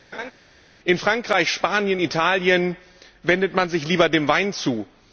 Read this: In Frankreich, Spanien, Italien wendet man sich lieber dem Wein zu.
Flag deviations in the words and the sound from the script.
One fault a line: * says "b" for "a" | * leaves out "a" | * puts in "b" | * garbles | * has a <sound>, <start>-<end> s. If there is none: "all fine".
* has a laugh, 0.1-0.3 s